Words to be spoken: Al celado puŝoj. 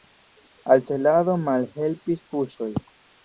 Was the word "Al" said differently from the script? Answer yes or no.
no